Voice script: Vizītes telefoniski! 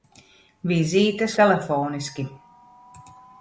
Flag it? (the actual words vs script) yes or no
no